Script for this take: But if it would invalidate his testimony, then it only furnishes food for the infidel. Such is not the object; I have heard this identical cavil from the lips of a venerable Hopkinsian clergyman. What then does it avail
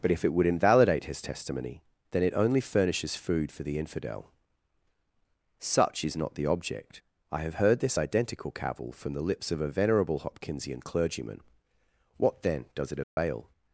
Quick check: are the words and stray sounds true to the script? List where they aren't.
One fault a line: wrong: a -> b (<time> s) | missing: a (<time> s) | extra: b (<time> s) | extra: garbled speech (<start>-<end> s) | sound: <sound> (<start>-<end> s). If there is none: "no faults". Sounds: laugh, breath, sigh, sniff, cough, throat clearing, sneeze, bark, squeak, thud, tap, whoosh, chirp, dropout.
sound: dropout (13.0-13.2 s)